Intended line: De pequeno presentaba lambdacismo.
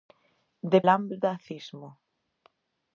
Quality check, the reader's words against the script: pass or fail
fail